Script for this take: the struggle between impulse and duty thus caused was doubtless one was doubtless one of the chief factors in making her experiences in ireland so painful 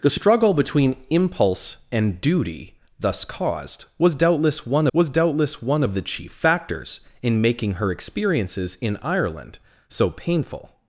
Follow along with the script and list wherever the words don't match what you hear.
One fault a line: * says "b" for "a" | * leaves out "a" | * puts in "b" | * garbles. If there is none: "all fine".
all fine